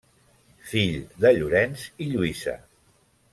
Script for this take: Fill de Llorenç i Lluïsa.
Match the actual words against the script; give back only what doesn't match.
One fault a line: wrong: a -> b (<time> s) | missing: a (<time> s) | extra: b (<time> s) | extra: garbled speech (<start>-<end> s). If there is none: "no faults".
no faults